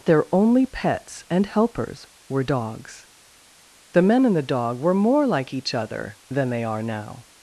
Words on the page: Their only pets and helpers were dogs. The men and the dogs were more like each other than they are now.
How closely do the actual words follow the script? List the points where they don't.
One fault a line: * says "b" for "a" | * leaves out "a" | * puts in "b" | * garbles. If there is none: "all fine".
* says "dog" for "dogs"